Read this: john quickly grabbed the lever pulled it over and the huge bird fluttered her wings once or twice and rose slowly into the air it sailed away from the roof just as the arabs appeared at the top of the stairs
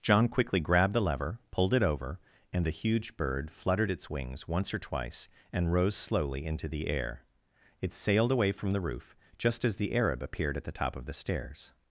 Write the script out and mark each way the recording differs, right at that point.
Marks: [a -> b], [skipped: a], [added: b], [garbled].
john quickly grabbed the lever pulled it over and the huge bird fluttered [her -> its] wings once or twice and rose slowly into the air it sailed away from the roof just as the [arabs -> arab] appeared at the top of the stairs